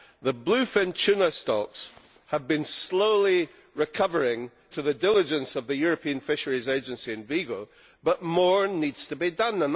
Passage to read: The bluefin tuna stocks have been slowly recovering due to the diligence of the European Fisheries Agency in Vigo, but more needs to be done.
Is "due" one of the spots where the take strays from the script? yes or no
yes